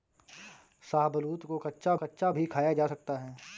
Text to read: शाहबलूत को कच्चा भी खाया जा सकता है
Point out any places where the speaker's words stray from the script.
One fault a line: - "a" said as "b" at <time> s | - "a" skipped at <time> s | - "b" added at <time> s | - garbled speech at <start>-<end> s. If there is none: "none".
- "कच्चा" added at 1.9 s